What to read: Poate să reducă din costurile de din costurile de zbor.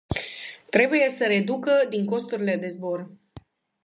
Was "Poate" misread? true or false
true